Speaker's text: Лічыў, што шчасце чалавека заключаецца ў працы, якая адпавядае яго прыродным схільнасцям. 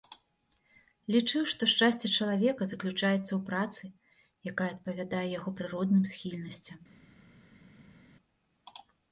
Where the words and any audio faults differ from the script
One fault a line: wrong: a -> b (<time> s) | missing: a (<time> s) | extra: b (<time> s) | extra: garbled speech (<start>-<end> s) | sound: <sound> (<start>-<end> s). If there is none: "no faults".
no faults